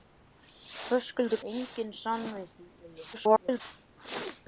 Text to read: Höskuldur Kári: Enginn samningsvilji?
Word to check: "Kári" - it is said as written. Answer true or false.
false